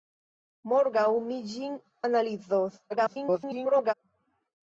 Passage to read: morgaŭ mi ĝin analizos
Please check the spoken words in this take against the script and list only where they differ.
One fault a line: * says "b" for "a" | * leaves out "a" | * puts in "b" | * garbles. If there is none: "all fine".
* garbles